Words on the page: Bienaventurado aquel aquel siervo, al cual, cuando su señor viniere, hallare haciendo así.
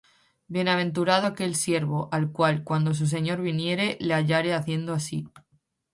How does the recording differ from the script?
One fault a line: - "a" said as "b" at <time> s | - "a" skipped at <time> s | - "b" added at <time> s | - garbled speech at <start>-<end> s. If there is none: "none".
- "aquel" skipped at 1.6 s
- "le" added at 4.0 s